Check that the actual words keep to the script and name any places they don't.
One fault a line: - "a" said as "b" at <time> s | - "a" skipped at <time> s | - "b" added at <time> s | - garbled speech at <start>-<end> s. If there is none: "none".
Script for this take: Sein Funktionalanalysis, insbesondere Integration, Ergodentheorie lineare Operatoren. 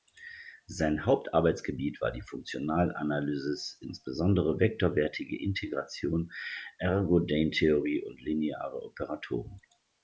- "Hauptarbeitsgebiet war die" added at 1.1 s
- "vektorwertige" added at 4.6 s
- "und" added at 8.1 s